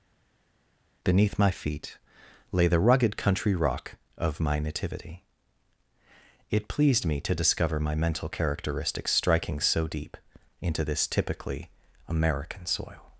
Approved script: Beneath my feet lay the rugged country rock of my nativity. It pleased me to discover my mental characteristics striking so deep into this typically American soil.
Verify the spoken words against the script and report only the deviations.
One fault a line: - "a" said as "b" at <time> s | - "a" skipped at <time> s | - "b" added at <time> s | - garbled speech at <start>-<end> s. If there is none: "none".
none